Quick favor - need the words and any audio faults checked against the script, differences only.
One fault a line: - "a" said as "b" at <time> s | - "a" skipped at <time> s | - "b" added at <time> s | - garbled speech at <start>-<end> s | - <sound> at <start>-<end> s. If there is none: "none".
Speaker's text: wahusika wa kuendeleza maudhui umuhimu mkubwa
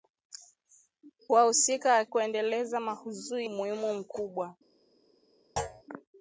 - thud at 5.6-5.8 s